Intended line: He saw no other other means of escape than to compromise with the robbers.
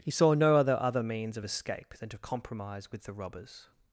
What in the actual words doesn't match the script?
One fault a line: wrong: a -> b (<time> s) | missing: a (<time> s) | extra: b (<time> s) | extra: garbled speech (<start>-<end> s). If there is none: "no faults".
no faults